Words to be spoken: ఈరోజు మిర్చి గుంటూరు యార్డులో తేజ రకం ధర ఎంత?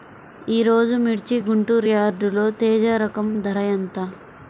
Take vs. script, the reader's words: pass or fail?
pass